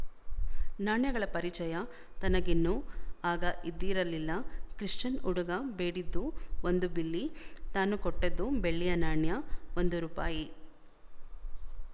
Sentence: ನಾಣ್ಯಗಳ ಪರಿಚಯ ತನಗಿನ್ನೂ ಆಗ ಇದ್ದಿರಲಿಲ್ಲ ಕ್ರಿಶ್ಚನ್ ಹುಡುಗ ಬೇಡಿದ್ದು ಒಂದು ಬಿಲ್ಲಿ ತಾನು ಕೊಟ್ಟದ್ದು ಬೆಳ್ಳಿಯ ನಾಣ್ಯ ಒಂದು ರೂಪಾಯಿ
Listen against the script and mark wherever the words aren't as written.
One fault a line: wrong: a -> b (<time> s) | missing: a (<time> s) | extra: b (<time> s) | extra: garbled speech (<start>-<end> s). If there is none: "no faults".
no faults